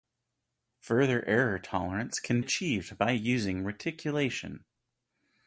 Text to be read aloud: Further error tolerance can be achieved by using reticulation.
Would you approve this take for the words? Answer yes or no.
no